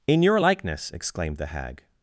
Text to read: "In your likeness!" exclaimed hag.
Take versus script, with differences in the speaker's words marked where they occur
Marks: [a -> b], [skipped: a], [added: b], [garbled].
"In your likeness!" exclaimed [added: the] hag.